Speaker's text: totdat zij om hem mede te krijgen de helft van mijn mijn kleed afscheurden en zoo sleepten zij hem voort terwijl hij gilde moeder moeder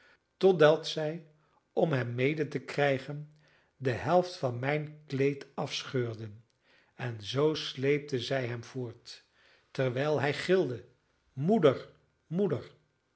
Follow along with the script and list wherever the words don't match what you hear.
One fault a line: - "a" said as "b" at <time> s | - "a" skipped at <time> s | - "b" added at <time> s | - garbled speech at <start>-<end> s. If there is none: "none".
- "mijn" skipped at 5.0 s